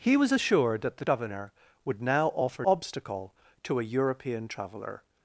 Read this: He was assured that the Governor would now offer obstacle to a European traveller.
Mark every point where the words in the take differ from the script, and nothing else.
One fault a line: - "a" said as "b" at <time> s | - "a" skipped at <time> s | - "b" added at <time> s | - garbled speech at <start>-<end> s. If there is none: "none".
none